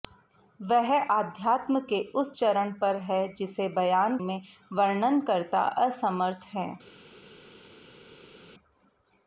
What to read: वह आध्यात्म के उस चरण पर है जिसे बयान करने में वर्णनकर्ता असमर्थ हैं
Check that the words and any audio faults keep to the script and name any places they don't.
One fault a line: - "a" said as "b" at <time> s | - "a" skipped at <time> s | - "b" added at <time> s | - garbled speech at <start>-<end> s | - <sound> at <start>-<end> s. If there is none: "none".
- "करने" skipped at 4.2 s